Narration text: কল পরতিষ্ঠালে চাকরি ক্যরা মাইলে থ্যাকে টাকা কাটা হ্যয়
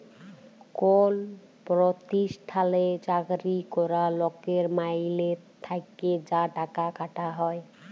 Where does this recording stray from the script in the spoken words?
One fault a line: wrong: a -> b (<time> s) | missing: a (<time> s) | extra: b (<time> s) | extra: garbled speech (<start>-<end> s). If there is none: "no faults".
extra: লকের (4.2 s)
extra: যা (6.3 s)